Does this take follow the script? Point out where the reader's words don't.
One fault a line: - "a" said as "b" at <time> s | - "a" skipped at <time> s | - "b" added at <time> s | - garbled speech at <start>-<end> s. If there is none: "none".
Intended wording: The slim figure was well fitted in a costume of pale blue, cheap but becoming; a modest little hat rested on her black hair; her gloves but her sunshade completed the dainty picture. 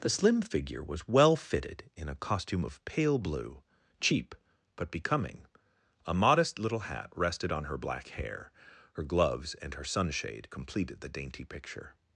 - "but" said as "and" at 9.5 s